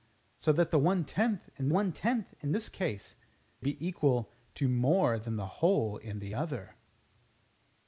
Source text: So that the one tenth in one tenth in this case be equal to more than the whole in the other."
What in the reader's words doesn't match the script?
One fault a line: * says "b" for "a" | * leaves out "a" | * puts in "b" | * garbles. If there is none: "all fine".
all fine